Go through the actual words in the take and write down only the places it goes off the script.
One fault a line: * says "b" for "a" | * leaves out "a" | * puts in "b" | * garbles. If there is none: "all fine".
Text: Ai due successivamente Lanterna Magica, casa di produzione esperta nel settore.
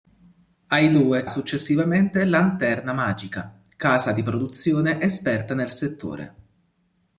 all fine